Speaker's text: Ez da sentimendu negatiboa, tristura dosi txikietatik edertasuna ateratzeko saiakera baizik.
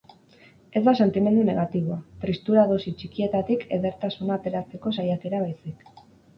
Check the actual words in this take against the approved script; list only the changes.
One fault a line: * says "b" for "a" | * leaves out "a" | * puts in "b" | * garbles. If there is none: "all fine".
all fine